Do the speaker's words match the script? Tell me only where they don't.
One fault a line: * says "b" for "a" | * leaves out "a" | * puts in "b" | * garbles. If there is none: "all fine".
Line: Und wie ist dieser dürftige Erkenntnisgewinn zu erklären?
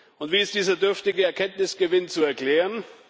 all fine